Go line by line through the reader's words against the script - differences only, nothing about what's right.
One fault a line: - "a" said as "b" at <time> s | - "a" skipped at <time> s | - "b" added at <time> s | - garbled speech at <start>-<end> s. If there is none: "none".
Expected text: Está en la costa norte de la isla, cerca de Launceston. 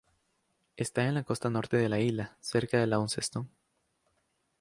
none